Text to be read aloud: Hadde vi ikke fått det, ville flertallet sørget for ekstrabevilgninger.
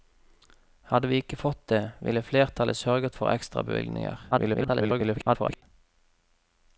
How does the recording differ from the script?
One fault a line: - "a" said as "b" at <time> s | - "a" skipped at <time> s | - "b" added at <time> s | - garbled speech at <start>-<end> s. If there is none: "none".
- garbled speech at 4.3-5.6 s